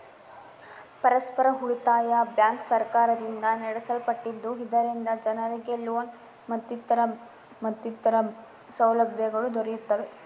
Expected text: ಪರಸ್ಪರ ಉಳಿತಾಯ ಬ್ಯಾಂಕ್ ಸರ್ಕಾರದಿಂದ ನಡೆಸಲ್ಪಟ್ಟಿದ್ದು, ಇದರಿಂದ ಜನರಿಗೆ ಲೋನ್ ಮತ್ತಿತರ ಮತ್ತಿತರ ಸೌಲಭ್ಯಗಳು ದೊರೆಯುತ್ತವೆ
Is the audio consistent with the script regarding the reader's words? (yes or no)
yes